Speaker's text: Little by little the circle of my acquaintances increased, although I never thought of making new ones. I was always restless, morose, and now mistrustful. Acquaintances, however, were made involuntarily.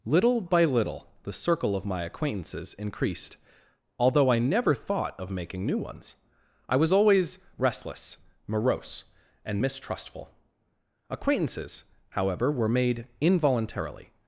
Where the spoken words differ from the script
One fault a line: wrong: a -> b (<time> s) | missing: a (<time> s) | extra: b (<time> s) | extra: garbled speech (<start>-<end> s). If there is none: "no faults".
missing: now (9.6 s)